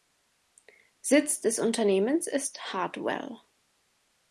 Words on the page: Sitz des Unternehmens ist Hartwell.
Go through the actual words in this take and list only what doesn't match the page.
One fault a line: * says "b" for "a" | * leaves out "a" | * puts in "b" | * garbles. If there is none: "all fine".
all fine